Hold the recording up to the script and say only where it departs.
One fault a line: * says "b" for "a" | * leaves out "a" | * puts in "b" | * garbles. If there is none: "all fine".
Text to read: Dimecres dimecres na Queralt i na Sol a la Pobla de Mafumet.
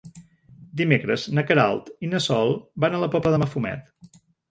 * leaves out "dimecres"
* puts in "van"